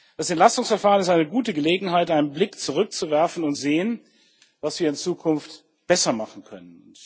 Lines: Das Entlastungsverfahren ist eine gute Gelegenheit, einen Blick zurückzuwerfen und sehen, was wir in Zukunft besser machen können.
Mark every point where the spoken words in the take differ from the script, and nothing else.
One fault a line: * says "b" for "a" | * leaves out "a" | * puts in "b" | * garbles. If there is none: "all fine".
all fine